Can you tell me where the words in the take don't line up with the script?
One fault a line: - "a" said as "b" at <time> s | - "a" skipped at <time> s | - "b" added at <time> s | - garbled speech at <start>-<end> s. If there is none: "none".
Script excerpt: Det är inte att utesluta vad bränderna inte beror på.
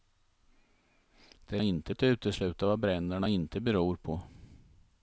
none